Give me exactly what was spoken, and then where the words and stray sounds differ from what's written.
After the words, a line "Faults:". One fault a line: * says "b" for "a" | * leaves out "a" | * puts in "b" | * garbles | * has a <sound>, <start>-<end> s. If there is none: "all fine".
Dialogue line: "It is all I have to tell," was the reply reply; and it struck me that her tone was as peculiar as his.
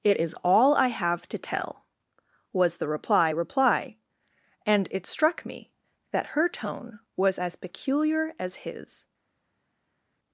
"It is all I have to tell," was the reply reply; and it struck me that her tone was as peculiar as his.
Faults:
all fine